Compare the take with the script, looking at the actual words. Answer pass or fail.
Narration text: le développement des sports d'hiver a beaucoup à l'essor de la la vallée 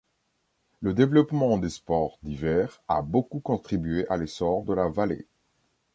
fail